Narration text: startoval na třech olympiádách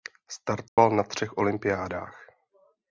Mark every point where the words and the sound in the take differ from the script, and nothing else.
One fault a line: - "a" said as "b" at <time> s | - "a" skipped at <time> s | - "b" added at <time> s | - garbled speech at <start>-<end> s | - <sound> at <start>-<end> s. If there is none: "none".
- dropout at 0.7-0.8 s